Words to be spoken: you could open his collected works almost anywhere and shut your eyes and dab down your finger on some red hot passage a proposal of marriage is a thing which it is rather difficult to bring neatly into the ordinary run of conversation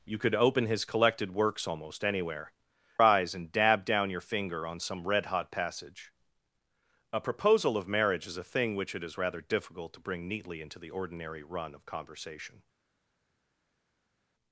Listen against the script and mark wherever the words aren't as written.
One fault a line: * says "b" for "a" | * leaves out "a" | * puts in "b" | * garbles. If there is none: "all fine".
* leaves out "and shut your"